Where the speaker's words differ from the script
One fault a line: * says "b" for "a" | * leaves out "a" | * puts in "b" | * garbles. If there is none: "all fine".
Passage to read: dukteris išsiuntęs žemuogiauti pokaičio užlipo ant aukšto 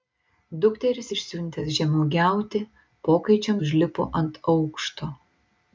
all fine